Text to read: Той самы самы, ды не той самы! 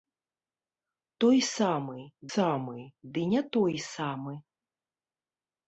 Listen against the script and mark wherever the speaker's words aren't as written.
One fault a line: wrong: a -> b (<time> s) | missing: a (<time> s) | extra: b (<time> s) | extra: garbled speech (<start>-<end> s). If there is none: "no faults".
no faults